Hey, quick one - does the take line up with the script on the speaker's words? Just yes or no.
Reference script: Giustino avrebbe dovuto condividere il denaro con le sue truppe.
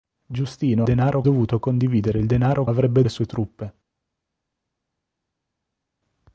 no